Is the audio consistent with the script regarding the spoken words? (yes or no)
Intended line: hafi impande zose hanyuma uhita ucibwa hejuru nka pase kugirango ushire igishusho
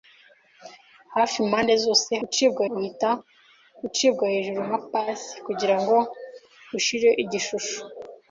no